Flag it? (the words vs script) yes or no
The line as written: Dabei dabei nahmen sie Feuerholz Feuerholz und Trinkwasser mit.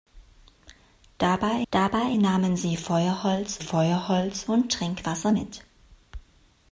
no